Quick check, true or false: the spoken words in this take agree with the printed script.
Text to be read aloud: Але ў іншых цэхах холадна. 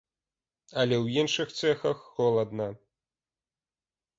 true